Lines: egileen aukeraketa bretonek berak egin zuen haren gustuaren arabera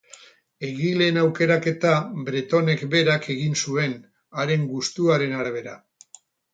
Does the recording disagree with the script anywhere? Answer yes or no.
no